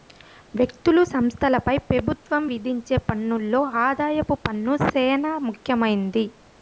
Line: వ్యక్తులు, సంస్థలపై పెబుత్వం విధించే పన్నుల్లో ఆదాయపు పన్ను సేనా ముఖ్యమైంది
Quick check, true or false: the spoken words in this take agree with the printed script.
true